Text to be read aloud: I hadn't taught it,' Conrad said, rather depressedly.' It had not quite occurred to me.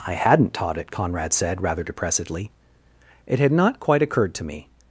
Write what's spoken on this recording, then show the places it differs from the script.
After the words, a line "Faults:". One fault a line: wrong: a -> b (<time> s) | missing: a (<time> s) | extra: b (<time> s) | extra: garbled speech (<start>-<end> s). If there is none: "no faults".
I hadn't taught it,' Conrad said, rather depressedly.' It had not quite occurred to me.
Faults:
no faults